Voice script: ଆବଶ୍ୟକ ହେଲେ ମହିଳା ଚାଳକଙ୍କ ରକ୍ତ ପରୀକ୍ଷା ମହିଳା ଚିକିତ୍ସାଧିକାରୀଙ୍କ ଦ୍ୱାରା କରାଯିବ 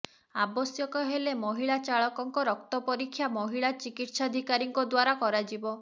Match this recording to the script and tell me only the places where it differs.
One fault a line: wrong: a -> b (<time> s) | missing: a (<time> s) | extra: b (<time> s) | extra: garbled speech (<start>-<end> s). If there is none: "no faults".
no faults